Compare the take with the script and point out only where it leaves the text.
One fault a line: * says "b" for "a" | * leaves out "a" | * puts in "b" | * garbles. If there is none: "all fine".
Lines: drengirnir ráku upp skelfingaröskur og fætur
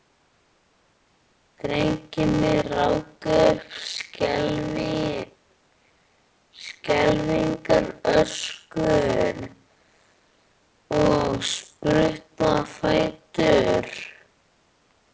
* puts in "spruttu á"